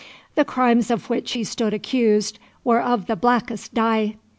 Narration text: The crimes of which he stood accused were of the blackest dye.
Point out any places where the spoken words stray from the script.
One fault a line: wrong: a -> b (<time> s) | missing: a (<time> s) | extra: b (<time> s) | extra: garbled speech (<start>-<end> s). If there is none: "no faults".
no faults